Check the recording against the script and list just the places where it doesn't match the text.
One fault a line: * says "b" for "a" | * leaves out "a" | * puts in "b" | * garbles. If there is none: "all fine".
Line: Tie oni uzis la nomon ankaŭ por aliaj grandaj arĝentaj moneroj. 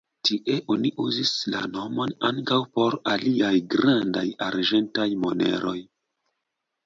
all fine